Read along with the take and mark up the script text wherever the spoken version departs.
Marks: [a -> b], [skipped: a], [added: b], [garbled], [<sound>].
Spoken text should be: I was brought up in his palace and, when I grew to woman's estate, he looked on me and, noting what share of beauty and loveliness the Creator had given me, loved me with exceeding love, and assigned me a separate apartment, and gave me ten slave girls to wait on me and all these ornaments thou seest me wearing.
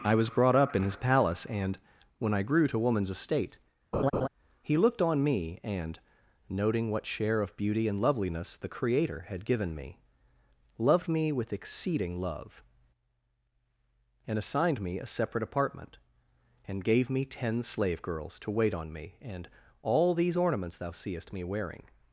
I was brought up in his palace and, when I grew to woman's estate, [laugh] he looked on me and, noting what share of beauty and loveliness the Creator had given me, loved me with exceeding love, and assigned me a separate apartment, and gave me ten slave girls to wait on me and all these ornaments thou seest me wearing.